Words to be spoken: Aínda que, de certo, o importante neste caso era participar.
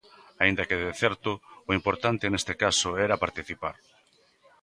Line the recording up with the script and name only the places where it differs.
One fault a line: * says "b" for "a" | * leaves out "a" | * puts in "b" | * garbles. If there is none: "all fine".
all fine